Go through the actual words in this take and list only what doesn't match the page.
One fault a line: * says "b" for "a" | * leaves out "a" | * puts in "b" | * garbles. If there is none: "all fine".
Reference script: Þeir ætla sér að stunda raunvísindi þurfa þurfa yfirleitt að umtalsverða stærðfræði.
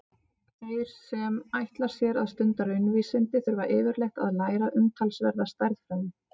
* puts in "sem"
* leaves out "þurfa"
* puts in "læra"